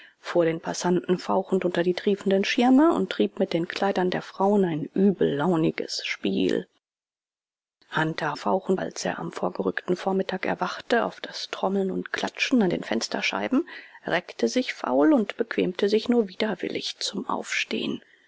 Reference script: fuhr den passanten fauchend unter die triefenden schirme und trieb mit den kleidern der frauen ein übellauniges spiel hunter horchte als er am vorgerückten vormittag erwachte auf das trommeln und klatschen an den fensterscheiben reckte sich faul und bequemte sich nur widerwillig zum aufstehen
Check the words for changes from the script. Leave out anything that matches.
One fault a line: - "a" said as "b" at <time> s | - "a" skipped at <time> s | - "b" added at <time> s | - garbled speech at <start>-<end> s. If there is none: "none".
- "horchte" said as "fauchend" at 8.4 s